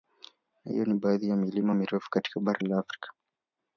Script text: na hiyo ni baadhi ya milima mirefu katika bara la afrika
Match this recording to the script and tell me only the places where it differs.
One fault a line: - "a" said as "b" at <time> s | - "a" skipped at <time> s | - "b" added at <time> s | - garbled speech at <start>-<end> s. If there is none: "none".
none